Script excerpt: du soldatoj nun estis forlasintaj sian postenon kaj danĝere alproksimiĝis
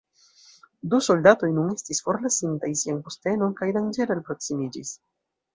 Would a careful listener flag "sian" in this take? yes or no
no